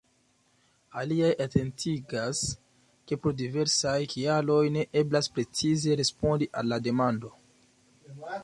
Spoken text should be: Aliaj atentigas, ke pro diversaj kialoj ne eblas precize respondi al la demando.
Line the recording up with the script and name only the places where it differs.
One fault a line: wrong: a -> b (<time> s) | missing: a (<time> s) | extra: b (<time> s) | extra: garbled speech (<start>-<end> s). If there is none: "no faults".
no faults